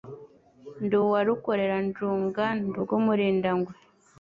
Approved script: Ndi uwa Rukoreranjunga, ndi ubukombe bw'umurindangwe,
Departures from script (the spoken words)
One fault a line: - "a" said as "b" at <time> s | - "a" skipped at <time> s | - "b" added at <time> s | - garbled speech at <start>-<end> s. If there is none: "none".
- "ubukombe" skipped at 2.8 s